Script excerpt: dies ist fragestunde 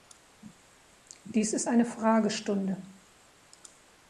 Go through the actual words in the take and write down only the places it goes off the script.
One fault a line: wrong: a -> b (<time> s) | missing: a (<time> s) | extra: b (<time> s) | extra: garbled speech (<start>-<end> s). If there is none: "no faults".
extra: eine (1.7 s)